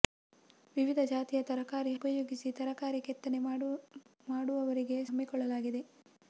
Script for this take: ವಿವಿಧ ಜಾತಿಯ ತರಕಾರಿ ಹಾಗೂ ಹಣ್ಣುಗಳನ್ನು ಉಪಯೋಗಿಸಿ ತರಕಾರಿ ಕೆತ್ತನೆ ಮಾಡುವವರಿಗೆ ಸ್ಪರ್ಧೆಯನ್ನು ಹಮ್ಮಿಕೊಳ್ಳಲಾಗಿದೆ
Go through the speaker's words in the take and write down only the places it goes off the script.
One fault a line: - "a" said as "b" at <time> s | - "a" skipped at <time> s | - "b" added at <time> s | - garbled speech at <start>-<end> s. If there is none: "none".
- "ಹಾಗೂ ಹಣ್ಣುಗಳನ್ನು" skipped at 1.9 s
- "ಸ್ಪರ್ಧೆಯನ್ನು" skipped at 5.0 s